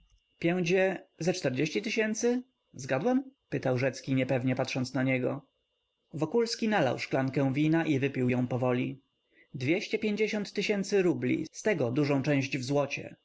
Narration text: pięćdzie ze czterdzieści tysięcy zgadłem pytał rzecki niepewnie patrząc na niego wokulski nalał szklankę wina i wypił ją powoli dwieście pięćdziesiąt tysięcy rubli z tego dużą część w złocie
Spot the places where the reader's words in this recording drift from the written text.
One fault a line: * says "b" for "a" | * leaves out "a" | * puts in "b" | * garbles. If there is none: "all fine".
all fine